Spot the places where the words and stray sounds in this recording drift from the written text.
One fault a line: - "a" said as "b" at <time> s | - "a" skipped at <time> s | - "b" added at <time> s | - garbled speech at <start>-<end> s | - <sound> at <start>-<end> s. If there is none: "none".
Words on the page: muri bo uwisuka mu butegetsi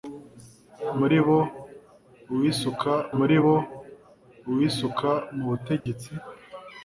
- "muri bo uwisuka" added at 3.2 s
- dropout at 5.8-5.9 s